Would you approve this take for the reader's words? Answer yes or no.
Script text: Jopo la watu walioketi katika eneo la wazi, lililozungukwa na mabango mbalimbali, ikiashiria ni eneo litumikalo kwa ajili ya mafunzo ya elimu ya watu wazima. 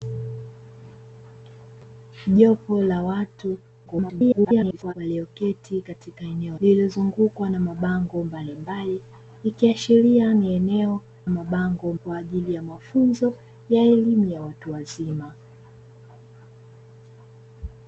no